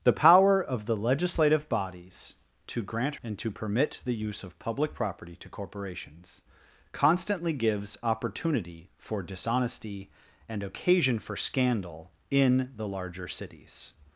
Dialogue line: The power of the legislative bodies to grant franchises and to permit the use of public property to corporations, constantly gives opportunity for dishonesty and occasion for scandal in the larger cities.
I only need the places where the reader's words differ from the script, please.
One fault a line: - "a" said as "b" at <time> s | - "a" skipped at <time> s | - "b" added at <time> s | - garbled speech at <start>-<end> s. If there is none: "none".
- "franchises" skipped at 3.1 s